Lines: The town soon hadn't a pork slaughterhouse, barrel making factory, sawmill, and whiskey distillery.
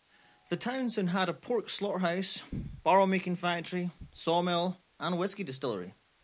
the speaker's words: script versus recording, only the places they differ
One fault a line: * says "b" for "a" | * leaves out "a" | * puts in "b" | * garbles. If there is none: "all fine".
* says "had" for "hadn't"